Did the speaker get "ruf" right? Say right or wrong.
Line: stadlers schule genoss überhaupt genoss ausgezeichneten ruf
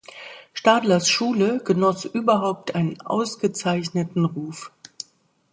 right